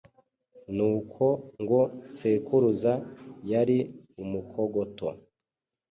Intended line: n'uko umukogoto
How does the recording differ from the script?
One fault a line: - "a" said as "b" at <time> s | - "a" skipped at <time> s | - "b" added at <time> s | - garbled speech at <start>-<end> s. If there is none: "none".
- "ngo sekuruza yari" added at 1.6 s